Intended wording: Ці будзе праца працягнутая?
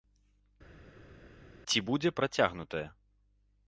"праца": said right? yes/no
no